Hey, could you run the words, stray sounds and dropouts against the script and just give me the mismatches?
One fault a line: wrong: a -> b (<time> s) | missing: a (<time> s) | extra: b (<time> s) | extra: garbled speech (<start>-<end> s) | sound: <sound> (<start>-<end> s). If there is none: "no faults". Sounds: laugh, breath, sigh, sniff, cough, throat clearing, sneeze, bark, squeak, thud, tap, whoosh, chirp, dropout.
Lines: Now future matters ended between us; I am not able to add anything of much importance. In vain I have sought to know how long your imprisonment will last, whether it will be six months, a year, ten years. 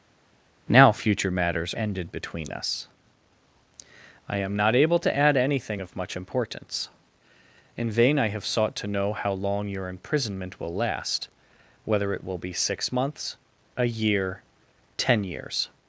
no faults